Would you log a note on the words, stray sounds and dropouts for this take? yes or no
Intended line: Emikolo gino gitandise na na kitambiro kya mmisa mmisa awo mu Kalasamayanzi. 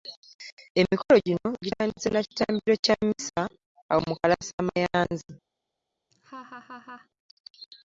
yes